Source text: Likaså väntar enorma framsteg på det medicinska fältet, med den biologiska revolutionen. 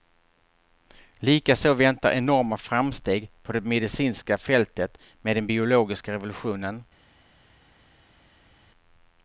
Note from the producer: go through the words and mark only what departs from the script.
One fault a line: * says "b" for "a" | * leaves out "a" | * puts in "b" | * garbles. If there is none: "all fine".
all fine